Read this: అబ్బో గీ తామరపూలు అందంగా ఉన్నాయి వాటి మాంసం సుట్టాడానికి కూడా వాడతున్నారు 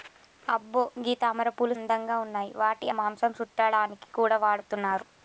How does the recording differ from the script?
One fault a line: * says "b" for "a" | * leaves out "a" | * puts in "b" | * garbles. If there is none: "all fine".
all fine